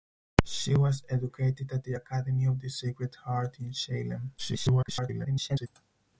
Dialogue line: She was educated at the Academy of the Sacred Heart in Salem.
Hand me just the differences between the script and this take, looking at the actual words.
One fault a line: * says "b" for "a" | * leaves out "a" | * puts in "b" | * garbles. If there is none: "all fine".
* garbles